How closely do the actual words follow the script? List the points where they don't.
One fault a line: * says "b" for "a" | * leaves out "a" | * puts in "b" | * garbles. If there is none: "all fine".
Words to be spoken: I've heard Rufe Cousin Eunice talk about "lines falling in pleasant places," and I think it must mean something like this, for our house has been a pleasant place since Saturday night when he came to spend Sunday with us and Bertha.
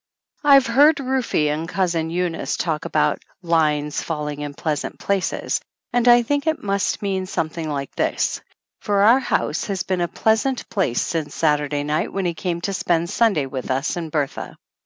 * puts in "and"